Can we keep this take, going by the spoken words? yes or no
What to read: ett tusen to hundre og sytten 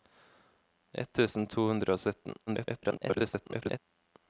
no